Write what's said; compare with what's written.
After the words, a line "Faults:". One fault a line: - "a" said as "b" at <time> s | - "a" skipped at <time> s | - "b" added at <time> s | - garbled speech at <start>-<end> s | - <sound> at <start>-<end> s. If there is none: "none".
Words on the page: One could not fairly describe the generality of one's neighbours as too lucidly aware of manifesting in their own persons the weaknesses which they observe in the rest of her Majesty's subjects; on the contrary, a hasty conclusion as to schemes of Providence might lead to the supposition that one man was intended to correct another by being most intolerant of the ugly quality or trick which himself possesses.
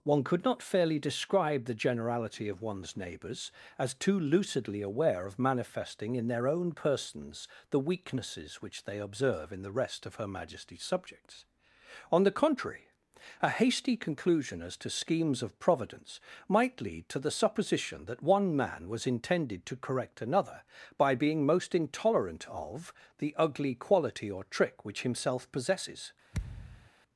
One could not fairly describe the generality of one's neighbours as too lucidly aware of manifesting in their own persons the weaknesses which they observe in the rest of her Majesty's subjects; on the contrary, a hasty conclusion as to schemes of Providence might lead to the supposition that one man was intended to correct another by being most intolerant of the ugly quality or trick which himself possesses.
Faults:
- thud at 26.3-26.9 s